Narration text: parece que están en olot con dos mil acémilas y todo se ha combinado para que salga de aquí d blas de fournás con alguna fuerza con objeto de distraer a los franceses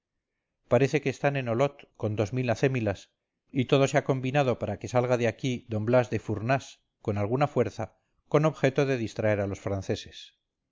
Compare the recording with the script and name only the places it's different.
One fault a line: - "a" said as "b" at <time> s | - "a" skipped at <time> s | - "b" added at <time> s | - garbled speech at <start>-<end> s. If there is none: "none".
none